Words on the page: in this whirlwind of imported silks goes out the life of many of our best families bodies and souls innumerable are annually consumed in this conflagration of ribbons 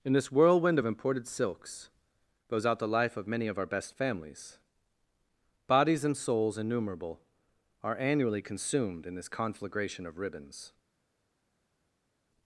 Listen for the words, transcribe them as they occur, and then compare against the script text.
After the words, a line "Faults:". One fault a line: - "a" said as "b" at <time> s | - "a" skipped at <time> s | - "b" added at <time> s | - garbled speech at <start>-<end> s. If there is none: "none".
in this whirlwind of imported silks goes out the life of many of our best families bodies and souls innumerable are annually consumed in this conflagration of ribbons
Faults:
none